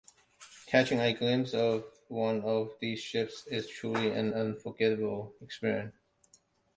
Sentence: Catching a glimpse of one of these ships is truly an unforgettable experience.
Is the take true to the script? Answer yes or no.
yes